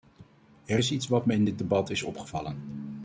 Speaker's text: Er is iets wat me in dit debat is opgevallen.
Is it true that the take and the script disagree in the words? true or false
false